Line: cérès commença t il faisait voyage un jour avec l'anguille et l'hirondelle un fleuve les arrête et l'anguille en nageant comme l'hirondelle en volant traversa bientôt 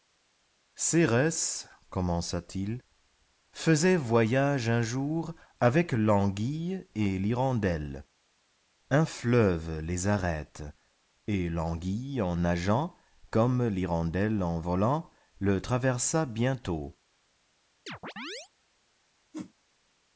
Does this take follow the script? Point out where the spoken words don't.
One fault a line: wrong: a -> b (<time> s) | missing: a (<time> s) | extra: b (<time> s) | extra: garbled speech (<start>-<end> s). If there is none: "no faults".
extra: le (15.4 s)